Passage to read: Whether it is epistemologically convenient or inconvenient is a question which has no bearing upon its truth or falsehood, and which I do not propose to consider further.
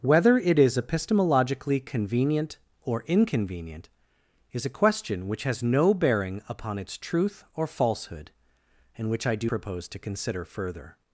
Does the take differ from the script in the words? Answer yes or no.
yes